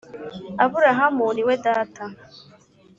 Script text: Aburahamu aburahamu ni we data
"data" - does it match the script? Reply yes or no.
yes